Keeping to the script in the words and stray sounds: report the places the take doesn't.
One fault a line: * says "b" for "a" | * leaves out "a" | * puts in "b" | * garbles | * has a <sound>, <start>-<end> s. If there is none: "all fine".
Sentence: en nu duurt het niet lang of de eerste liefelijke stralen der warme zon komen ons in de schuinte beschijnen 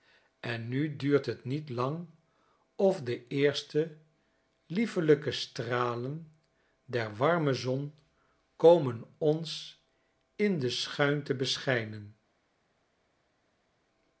all fine